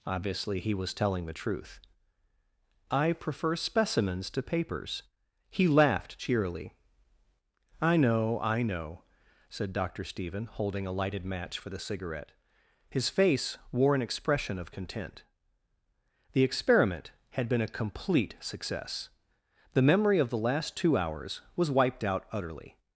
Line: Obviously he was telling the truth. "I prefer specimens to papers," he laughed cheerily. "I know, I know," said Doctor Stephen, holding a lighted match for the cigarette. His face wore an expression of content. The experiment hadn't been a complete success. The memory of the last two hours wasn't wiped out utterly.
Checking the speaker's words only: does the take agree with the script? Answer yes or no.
no